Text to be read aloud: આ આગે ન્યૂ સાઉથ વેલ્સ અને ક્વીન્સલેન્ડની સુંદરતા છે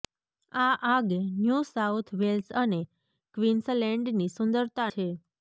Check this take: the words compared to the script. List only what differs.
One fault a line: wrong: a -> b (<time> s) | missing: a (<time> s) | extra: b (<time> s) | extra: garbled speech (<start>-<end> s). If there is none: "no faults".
no faults